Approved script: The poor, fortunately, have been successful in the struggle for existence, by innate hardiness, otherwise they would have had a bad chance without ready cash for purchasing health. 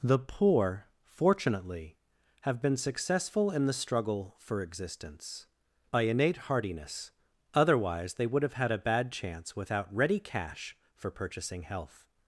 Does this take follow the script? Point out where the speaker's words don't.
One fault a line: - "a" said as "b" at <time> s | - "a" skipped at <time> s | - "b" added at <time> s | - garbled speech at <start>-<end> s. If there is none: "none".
none